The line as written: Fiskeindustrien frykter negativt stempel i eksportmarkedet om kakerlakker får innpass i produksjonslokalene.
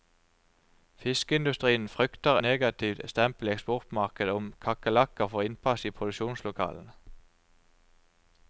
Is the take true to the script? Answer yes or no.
yes